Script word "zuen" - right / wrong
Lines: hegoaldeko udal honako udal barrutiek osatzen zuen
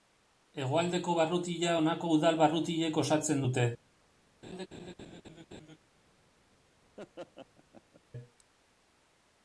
wrong